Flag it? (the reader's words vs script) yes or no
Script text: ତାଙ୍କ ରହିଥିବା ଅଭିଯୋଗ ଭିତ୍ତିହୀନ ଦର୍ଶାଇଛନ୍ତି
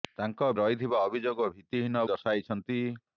no